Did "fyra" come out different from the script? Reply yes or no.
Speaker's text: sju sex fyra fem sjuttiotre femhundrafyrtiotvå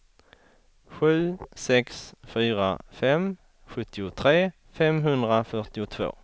no